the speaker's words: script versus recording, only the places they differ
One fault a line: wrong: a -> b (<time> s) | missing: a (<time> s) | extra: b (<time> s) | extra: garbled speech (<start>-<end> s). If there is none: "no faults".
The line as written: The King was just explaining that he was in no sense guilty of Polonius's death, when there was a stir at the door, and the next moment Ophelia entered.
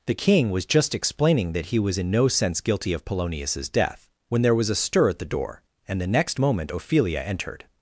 no faults